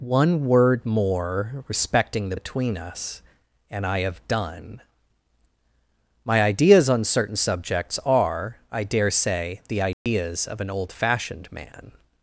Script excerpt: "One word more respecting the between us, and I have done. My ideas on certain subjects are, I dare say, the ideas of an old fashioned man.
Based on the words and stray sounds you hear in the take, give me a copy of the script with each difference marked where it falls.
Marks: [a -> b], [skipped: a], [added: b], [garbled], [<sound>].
"One word more respecting the between us, and I have done. My ideas on certain subjects are, I dare say, the ideas [dropout] of an old fashioned man.